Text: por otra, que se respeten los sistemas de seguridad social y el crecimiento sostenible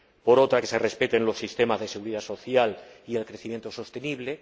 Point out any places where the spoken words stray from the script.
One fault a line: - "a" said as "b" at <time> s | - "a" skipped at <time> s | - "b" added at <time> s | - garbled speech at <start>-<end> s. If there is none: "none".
none